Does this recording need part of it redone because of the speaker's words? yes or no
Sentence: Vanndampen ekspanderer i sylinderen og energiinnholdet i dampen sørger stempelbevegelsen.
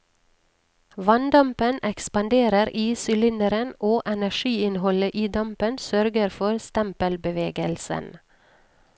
yes